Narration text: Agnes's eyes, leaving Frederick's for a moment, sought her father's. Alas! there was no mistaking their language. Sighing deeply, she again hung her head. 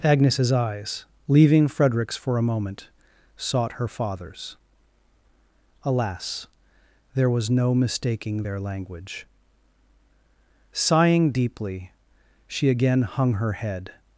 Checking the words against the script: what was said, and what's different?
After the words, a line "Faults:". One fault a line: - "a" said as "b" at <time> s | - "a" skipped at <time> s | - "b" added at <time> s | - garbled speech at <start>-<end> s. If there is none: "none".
Agnes's eyes, leaving Frederick's for a moment, sought her father's. Alas! there was no mistaking their language. Sighing deeply, she again hung her head.
Faults:
none